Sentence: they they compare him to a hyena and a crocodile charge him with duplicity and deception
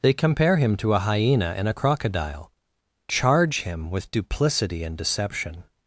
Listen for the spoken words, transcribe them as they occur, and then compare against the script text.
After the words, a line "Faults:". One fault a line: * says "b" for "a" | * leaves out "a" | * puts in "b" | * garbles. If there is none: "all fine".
they compare him to a hyena and a crocodile charge him with duplicity and deception
Faults:
* leaves out "they"